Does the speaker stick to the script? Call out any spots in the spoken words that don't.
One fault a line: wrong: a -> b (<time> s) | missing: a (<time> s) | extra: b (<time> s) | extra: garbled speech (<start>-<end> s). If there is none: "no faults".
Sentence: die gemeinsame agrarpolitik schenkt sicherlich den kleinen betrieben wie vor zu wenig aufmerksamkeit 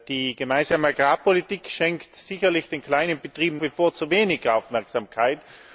no faults